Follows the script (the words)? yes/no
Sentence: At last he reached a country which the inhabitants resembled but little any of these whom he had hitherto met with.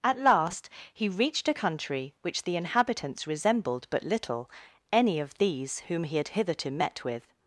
yes